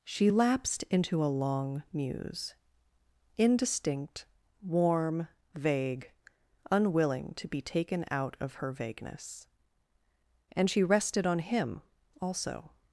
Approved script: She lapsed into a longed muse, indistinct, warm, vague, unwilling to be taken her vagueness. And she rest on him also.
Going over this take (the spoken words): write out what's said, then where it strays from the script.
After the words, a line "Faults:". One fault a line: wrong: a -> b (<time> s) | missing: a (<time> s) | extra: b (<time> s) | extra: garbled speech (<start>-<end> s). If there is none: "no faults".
She lapsed into a long muse, indistinct, warm, vague, unwilling to be taken out of her vagueness. And she rested on him also.
Faults:
wrong: longed -> long (1.3 s)
extra: out of (8.1 s)
wrong: rest -> rested (10.8 s)